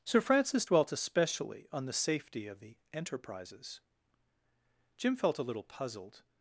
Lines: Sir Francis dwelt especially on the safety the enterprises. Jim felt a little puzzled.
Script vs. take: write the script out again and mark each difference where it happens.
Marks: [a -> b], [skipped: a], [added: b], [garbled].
Sir Francis dwelt especially on the safety [added: of] the enterprises. Jim felt a little puzzled.